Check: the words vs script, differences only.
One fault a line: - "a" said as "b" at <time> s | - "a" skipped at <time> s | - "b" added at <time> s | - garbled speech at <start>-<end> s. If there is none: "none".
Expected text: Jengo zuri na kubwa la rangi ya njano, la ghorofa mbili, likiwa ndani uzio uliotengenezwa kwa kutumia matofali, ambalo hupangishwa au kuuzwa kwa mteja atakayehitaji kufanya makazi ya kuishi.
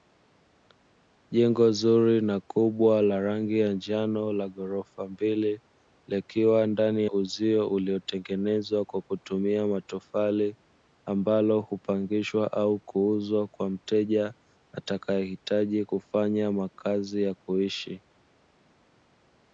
none